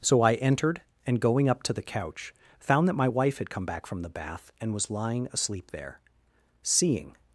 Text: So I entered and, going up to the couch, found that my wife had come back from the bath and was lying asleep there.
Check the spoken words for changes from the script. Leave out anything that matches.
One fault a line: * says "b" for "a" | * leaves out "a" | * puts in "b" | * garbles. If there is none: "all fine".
* puts in "Seeing"